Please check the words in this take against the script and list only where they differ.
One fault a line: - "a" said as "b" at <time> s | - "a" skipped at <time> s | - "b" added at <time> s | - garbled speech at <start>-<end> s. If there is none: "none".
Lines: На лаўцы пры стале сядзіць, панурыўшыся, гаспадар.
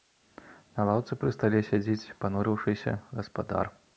none